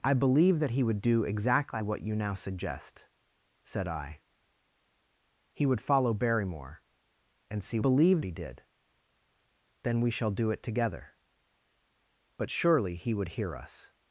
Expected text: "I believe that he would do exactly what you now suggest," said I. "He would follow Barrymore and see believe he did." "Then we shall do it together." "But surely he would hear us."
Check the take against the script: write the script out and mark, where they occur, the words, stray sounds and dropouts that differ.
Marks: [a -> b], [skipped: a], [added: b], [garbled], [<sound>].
"I believe that he would do exactly what you now suggest," said I. "He would follow Barrymore and see believe he did." "Then we shall do it together." "But surely he would hear us."